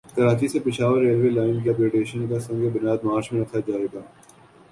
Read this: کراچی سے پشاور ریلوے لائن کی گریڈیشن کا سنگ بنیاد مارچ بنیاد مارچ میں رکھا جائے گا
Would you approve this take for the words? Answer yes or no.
no